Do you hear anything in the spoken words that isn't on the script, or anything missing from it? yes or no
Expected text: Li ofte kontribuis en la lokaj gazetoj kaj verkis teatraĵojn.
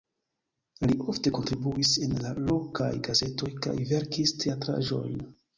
no